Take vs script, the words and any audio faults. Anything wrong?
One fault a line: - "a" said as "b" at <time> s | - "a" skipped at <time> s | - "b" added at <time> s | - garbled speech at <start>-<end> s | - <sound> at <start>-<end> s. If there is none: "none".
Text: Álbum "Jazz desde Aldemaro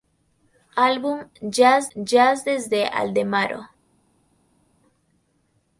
- "jazz" added at 1.9 s